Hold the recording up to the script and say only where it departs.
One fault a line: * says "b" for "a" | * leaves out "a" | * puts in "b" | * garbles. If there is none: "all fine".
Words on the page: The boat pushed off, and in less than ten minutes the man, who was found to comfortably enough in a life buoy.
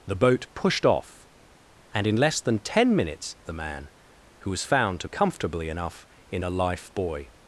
all fine